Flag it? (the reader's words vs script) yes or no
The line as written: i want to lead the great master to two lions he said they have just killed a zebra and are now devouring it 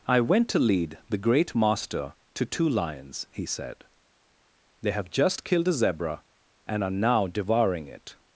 yes